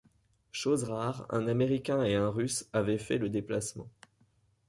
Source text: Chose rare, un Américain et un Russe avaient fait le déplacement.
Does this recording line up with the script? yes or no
yes